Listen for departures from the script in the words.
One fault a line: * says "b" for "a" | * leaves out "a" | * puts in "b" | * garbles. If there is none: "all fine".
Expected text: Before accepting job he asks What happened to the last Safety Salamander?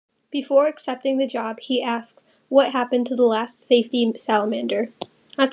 * puts in "the"